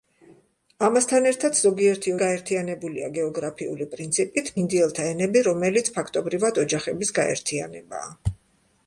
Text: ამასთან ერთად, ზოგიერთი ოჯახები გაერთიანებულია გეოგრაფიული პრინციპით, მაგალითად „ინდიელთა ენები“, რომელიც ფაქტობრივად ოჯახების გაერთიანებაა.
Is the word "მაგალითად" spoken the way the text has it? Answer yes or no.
no